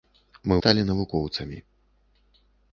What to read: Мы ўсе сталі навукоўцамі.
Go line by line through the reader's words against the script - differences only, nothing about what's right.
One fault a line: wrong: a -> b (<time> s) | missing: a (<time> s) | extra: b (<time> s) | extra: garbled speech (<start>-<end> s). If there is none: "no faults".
missing: ўсе (0.6 s)